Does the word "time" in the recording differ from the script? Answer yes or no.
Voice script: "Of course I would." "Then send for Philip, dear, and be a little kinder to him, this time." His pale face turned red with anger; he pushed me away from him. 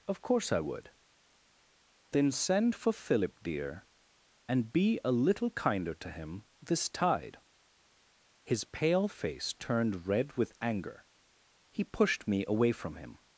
yes